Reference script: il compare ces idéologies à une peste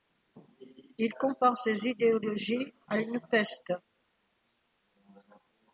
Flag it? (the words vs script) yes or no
no